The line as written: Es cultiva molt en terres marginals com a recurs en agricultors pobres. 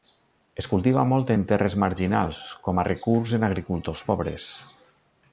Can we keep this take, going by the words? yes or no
yes